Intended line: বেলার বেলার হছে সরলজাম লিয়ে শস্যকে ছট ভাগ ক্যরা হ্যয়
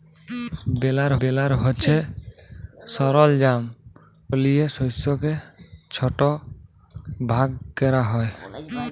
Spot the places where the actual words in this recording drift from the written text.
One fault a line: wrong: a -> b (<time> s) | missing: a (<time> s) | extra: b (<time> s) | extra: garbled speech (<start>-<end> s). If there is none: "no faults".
no faults